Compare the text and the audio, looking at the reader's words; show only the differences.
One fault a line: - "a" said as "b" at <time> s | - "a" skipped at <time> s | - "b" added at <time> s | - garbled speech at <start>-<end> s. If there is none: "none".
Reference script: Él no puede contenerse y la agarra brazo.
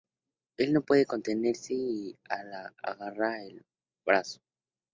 - "del" added at 3.4 s